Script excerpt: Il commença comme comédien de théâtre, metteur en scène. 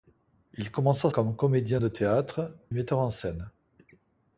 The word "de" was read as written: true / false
true